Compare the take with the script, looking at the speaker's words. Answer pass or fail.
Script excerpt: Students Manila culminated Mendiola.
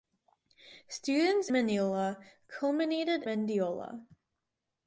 pass